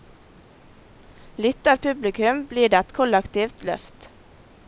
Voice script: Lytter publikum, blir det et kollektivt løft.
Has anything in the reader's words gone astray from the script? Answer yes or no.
no